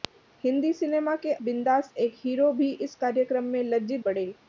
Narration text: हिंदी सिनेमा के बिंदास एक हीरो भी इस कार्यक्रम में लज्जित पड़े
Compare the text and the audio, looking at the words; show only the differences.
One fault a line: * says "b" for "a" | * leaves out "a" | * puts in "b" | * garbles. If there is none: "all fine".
all fine